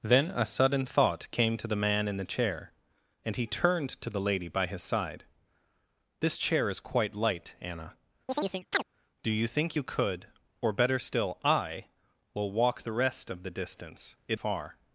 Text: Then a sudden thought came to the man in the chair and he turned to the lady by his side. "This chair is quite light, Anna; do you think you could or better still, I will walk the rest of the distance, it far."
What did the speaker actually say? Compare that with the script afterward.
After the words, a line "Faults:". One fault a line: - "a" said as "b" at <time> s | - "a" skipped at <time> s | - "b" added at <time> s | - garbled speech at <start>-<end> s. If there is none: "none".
Then a sudden thought came to the man in the chair and he turned to the lady by his side. "This chair is quite light, Anna; do you think you could or better still, I will walk the rest of the distance, it far."
Faults:
none